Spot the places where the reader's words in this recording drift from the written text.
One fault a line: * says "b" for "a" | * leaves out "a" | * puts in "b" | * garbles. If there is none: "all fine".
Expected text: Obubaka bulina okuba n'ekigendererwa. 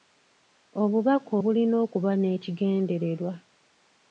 all fine